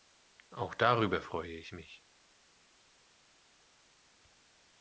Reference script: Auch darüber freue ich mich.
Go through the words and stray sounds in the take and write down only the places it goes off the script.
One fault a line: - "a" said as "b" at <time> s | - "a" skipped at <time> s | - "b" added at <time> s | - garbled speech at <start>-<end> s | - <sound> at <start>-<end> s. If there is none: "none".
none